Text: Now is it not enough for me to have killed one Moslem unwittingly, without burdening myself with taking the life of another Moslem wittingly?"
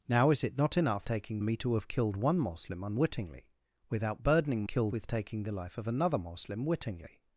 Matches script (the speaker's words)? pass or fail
fail